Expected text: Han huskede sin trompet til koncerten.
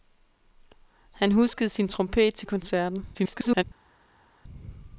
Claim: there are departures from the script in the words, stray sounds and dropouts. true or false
true